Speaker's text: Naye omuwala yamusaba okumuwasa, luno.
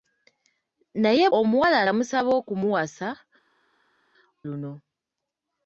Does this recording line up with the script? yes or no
yes